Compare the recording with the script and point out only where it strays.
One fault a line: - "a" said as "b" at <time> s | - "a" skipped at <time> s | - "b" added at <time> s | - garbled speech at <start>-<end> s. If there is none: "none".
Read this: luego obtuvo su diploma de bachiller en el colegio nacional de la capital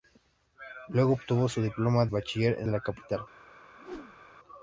- "de" skipped at 2.1 s
- "el colegio nacional" skipped at 2.7 s